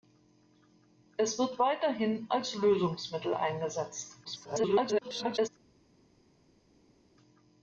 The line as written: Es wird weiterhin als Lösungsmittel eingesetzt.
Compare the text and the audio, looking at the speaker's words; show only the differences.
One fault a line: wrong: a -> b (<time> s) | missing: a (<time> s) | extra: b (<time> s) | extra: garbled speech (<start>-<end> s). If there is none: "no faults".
extra: garbled speech (4.2-5.5 s)